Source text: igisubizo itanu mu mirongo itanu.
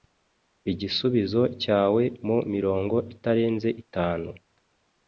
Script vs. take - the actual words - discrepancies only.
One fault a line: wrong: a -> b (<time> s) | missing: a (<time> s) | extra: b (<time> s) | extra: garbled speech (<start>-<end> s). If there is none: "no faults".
wrong: itanu -> cyawe (1.6 s)
extra: itarenze (3.1 s)